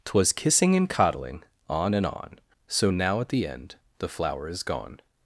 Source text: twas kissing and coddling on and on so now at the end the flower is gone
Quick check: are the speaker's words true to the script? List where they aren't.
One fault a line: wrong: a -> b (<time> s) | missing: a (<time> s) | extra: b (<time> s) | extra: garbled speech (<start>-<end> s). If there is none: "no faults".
no faults